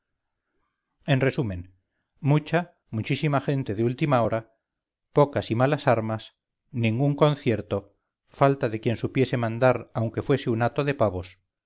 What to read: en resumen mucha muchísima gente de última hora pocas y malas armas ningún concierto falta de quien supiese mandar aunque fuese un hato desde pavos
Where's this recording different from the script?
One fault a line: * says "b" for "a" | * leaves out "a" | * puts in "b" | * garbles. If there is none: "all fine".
* says "de" for "desde"